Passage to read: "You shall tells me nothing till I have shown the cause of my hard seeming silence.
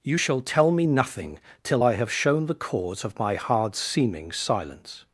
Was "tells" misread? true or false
true